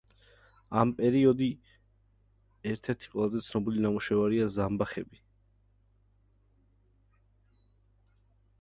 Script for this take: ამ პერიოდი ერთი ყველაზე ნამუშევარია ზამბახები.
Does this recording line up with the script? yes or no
no